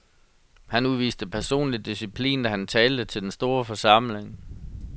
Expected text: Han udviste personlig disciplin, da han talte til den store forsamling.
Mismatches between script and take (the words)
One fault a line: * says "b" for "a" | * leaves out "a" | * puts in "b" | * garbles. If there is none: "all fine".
all fine